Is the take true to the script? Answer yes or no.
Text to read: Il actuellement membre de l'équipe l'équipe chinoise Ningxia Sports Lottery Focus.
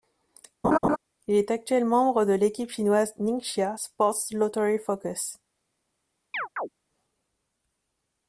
no